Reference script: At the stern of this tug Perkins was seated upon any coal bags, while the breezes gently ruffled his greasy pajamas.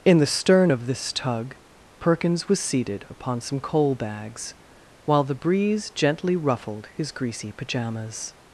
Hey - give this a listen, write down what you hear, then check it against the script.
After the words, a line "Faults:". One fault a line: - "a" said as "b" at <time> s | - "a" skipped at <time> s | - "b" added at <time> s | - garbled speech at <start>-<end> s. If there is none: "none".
In the stern of this tug Perkins was seated upon some coal bags, while the breeze gently ruffled his greasy pajamas.
Faults:
- "At" said as "In" at 0.0 s
- "any" said as "some" at 3.4 s
- "breezes" said as "breeze" at 5.3 s